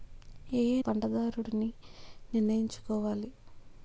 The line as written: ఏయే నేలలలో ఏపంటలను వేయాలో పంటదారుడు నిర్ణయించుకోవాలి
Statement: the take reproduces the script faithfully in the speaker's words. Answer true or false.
false